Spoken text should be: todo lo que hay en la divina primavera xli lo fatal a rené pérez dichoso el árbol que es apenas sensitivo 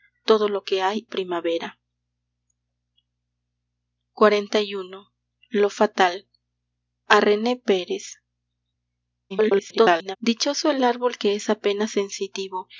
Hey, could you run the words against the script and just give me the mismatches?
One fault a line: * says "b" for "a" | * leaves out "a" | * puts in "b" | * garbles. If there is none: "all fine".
* leaves out "en la divina"
* garbles